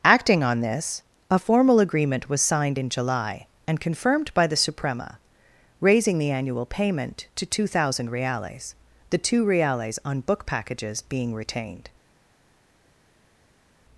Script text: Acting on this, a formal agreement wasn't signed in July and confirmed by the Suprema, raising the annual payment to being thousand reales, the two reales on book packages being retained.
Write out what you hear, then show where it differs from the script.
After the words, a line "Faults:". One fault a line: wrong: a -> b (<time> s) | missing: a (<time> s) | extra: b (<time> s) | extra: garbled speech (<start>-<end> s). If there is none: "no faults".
Acting on this, a formal agreement was signed in July and confirmed by the Suprema, raising the annual payment to two thousand reales, the two reales on book packages being retained.
Faults:
wrong: wasn't -> was (2.3 s)
wrong: being -> two (7.4 s)